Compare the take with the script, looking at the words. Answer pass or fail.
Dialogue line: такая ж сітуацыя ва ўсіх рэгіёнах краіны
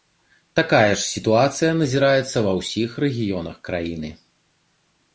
fail